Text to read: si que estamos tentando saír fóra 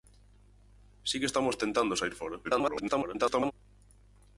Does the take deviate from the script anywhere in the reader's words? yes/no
yes